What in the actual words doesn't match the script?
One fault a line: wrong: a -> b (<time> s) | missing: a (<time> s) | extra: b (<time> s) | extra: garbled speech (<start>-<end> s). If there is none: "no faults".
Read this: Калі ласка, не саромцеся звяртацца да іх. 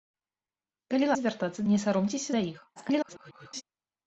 wrong: ласка -> звяртацца (1.2 s)
missing: звяртацца (2.3 s)
extra: garbled speech (2.8-3.6 s)